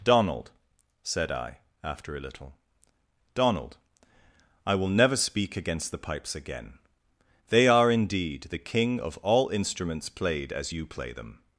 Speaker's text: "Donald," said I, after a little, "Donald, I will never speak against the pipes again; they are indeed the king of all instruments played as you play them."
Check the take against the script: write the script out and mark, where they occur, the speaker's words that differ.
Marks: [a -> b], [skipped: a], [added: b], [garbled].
"Donald," said I, after a little, "Donald, I will never speak against the pipes again; they are indeed the king of all instruments played as you play them."